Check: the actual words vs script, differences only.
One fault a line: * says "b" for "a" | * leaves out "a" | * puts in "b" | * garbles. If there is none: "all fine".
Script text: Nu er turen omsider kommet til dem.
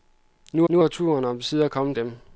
* puts in "nu"
* leaves out "til"